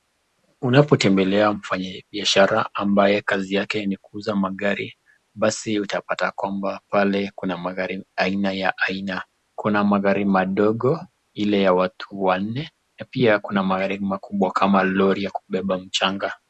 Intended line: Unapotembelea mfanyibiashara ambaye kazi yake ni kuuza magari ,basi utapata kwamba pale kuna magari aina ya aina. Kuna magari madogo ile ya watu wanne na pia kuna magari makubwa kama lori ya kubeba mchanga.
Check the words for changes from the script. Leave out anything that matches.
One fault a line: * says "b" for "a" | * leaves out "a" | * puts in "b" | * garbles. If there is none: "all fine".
all fine